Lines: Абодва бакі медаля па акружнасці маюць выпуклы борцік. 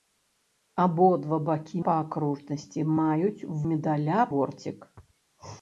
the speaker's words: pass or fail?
fail